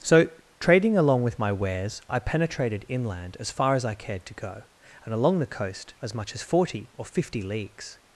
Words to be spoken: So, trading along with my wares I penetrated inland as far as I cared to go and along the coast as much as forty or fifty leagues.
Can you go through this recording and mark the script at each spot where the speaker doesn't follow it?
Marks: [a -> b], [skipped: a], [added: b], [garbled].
So, trading along with my wares I penetrated inland as far as I cared to go and along the coast as much as forty or fifty leagues.